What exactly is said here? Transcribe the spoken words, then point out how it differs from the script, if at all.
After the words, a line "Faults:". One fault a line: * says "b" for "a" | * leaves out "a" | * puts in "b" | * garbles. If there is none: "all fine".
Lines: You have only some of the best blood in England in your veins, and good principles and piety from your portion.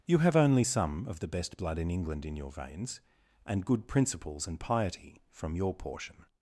You have only some of the best blood in England in your veins, and good principles and piety from your portion.
Faults:
all fine